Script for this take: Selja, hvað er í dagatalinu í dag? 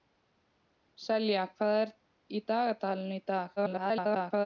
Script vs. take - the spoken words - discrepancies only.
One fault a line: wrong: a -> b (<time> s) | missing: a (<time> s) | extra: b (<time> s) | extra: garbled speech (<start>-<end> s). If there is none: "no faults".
extra: garbled speech (3.6-4.5 s)